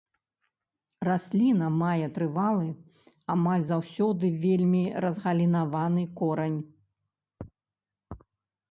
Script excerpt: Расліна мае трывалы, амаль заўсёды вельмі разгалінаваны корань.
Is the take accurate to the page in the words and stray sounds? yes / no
yes